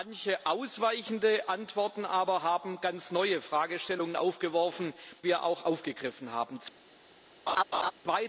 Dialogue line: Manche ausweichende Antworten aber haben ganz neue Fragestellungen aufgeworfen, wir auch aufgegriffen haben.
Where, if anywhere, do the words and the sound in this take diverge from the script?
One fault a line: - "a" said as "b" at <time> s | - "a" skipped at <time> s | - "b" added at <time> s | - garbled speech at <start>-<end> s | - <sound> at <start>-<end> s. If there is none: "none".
- laugh at 7.5-7.9 s